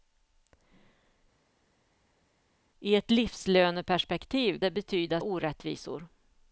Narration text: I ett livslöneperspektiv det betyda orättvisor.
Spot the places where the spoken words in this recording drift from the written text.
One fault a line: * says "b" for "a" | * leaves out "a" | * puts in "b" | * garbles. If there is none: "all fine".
all fine